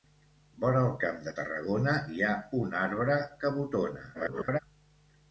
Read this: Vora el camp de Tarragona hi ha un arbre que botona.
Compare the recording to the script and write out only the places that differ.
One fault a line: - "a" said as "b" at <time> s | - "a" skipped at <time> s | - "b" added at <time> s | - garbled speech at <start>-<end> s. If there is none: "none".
- garbled speech at 4.1-4.6 s